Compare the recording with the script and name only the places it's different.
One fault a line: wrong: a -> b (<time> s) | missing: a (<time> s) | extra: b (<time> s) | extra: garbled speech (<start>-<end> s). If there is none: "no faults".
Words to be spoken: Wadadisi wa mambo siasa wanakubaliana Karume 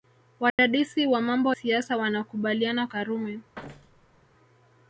no faults